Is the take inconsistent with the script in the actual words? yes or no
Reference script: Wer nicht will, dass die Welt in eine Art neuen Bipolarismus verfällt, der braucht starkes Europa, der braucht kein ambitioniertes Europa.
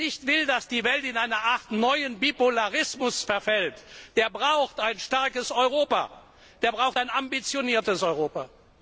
yes